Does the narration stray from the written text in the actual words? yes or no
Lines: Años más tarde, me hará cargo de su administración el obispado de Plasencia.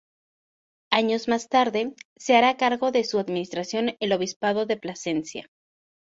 yes